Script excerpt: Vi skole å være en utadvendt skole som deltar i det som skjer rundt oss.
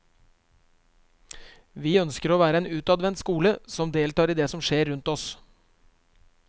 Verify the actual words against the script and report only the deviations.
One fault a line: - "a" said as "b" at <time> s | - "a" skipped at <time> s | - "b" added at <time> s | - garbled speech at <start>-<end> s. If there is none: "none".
- "skole" said as "ønsker" at 2.0 s